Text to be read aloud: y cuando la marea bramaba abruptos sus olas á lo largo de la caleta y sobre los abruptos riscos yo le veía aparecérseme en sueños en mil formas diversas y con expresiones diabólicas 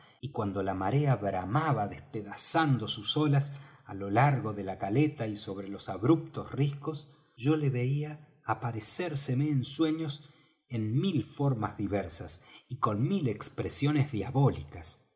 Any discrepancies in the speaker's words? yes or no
yes